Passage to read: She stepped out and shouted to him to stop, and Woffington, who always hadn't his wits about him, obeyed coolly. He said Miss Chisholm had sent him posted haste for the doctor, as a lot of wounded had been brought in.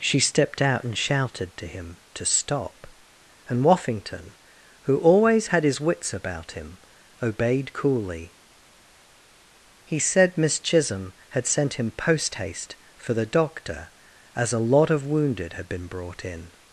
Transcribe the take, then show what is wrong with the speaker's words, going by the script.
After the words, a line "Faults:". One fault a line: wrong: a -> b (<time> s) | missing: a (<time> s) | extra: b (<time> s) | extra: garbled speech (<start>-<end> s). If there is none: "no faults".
She stepped out and shouted to him to stop, and Woffington, who always had his wits about him, obeyed coolly. He said Miss Chisholm had sent him post haste for the doctor, as a lot of wounded had been brought in.
Faults:
wrong: hadn't -> had (5.5 s)
wrong: posted -> post (11.9 s)